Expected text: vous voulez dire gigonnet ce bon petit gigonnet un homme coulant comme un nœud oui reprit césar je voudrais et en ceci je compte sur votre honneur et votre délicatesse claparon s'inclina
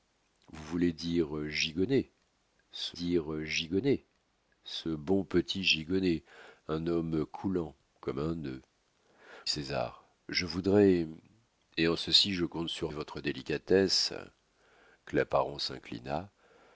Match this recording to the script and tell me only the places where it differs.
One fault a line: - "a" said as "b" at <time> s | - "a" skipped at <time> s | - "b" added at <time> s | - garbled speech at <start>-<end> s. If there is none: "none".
- "dire gigonnet ce" added at 2.9 s
- "oui reprit" skipped at 8.6 s
- "votre honneur" skipped at 12.9 s